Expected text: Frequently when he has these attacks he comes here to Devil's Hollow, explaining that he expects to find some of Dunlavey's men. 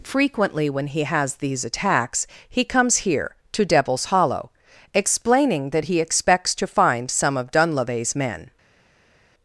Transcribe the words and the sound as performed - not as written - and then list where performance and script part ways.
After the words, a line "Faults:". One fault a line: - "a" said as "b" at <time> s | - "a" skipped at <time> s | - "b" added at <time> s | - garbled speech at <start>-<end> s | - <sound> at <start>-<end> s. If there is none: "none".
Frequently when he has these attacks he comes here to Devil's Hollow, explaining that he expects to find some of Dunlavey's men.
Faults:
none